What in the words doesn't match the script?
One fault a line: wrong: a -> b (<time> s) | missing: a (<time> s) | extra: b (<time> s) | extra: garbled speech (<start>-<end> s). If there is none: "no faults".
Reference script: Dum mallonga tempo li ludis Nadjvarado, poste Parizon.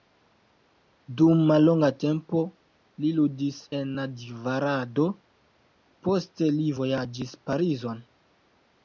extra: en (3.8 s)
extra: li vojaĝis (6.6 s)